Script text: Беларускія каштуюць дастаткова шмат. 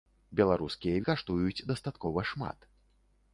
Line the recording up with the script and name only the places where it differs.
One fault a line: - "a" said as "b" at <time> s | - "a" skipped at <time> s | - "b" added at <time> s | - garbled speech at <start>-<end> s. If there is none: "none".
none